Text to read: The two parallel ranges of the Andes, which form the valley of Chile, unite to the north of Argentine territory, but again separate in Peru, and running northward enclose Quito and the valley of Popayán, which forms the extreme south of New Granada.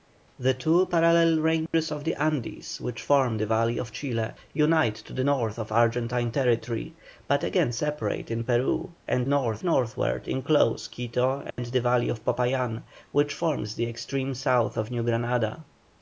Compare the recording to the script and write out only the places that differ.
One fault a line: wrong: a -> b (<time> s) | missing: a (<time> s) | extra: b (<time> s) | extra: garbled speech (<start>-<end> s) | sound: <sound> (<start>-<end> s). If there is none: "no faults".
sound: dropout (1.7-1.7 s)
wrong: running -> north (9.3 s)
sound: dropout (11.5-11.6 s)